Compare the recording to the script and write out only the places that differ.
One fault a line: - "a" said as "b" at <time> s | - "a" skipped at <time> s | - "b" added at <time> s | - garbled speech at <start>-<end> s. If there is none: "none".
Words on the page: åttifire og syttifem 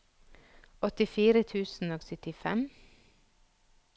- "tusen" added at 1.4 s